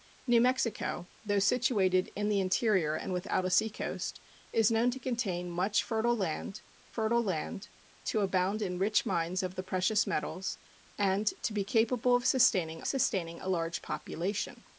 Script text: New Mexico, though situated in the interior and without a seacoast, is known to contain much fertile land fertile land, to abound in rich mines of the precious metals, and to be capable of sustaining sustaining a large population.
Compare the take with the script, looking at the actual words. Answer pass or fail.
pass